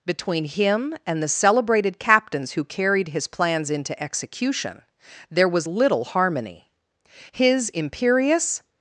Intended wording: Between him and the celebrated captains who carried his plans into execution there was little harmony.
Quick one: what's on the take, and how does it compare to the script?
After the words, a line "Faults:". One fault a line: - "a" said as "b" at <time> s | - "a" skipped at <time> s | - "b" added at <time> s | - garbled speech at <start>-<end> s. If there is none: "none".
Between him and the celebrated captains who carried his plans into execution there was little harmony. His imperious
Faults:
- "His imperious" added at 7.3 s